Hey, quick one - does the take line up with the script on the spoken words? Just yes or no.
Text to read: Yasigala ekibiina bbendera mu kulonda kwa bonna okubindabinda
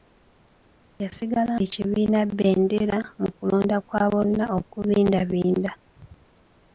yes